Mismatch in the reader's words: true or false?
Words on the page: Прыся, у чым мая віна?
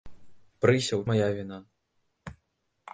true